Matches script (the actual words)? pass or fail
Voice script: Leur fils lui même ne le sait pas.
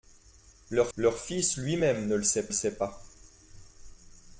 fail